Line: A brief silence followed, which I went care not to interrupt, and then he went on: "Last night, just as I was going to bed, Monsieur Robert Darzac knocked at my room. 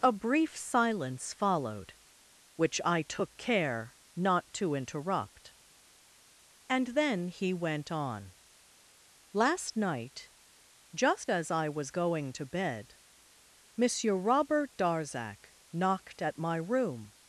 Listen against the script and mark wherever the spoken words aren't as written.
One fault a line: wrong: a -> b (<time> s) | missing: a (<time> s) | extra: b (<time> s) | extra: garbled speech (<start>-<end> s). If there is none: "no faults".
wrong: went -> took (3.0 s)